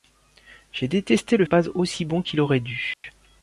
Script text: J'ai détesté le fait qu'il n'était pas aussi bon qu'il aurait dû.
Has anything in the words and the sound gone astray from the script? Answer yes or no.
yes